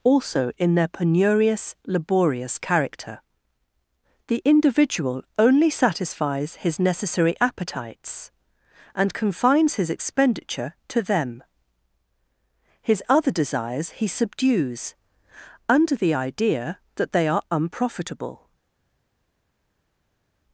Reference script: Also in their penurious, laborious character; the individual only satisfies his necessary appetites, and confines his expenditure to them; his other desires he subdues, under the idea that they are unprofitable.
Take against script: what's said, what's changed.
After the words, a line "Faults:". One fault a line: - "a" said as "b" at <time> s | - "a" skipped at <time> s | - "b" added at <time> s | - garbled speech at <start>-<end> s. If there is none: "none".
Also in their penurious, laborious character; the individual only satisfies his necessary appetites, and confines his expenditure to them; his other desires he subdues, under the idea that they are unprofitable.
Faults:
none